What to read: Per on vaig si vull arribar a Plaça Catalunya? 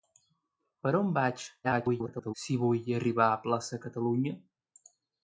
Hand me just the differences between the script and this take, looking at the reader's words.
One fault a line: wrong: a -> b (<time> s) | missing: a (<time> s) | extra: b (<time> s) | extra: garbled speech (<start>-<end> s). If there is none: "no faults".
extra: garbled speech (1.6-2.3 s)